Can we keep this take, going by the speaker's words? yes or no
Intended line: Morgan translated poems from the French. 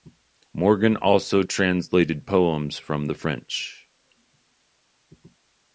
no